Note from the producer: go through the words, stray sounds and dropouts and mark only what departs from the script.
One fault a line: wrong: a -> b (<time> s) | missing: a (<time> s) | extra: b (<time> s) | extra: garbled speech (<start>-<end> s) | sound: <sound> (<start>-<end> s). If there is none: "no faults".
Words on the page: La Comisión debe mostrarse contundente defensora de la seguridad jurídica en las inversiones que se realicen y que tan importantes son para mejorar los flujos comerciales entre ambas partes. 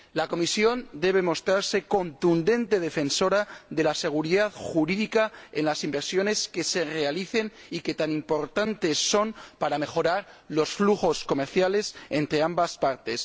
no faults